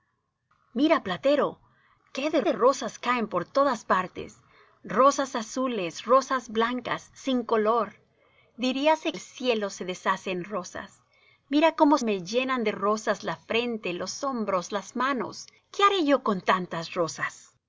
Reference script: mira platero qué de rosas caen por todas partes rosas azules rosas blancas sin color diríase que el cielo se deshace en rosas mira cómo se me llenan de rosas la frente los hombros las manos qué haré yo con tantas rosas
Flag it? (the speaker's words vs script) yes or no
yes